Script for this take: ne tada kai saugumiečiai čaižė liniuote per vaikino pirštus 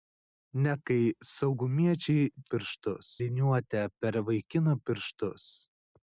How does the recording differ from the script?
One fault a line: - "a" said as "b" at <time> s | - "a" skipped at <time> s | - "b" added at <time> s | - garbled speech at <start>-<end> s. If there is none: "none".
- "tada" skipped at 0.7 s
- "čaižė" said as "pirštus" at 2.5 s